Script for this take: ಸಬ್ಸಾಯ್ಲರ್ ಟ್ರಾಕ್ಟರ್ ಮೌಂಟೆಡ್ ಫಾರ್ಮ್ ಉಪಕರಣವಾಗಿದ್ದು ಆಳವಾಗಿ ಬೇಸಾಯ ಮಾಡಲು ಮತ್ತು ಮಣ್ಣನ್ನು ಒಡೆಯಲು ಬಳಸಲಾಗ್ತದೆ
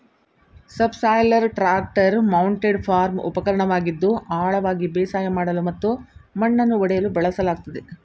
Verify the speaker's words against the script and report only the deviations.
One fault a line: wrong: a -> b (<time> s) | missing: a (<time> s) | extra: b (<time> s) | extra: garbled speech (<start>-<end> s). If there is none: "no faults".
no faults